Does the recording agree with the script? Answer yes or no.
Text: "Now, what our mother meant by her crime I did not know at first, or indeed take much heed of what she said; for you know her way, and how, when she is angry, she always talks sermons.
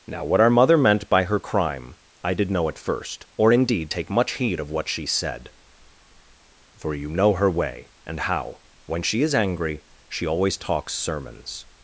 no